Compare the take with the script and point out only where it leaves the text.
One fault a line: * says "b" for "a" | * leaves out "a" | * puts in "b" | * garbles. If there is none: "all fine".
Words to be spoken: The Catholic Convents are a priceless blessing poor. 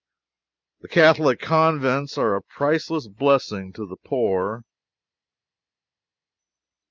* puts in "to the"